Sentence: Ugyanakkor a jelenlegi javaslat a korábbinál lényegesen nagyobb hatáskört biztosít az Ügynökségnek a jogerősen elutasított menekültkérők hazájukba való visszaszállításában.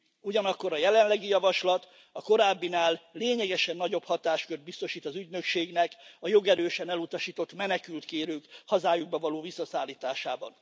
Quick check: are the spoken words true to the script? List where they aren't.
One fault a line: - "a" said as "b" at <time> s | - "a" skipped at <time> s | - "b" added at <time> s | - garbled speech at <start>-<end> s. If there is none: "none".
none